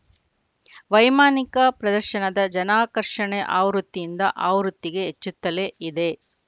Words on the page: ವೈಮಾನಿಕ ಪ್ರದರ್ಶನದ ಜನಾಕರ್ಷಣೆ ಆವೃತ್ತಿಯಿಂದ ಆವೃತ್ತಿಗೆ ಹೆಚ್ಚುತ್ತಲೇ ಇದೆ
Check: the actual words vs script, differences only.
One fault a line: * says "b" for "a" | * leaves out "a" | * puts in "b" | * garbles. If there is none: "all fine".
all fine